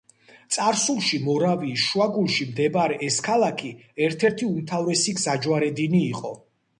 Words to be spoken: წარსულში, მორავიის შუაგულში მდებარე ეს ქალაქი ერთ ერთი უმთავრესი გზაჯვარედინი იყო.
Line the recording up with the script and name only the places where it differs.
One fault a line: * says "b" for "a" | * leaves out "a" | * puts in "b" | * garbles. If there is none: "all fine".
all fine